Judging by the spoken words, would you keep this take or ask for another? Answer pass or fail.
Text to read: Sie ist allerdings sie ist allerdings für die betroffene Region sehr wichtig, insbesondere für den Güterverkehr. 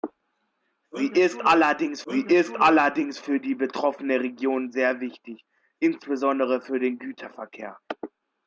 pass